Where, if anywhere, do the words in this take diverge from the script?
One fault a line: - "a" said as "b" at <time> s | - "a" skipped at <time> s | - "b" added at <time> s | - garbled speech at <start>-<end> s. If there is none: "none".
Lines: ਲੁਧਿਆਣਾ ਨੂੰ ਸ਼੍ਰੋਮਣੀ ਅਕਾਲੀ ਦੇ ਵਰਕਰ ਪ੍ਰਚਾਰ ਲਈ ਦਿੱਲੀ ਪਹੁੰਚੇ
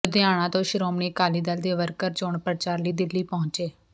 - "ਨੂੰ" said as "ਤੋਂ" at 0.5 s
- "ਦਲ" added at 1.4 s
- "ਚੋਣ" added at 2.1 s